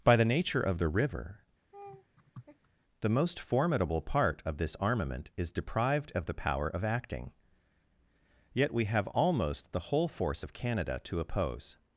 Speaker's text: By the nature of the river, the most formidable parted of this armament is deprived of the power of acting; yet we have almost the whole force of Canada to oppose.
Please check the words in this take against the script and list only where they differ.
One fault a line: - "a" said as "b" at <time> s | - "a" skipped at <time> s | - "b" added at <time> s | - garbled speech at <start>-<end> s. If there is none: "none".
- "parted" said as "part" at 4.0 s